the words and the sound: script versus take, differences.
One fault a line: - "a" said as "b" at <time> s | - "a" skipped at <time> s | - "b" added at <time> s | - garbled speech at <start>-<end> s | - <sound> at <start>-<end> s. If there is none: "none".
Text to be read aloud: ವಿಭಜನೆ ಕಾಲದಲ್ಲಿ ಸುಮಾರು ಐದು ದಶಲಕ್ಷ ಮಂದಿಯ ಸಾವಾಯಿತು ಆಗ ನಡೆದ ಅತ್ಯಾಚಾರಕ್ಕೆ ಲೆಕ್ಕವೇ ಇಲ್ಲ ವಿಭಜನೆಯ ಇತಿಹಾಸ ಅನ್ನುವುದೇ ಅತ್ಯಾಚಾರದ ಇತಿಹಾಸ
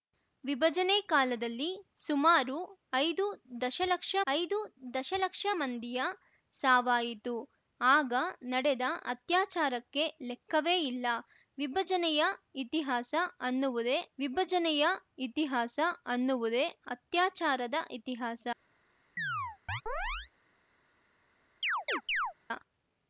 - "ಐದು ದಶಲಕ್ಷ" added at 4.3 s
- "ವಿಭಜನೆಯ ಇತಿಹಾಸ ಅನ್ನುವುದೇ" added at 14.2 s
- chirp at 19.2-20.3 s
- chirp at 21.6-22.3 s